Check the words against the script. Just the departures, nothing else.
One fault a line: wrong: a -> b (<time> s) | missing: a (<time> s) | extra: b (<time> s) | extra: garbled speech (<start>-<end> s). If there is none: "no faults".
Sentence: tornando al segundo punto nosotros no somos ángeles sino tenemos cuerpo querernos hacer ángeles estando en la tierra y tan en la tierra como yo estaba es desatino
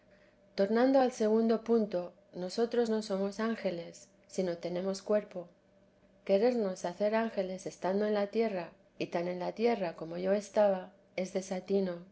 no faults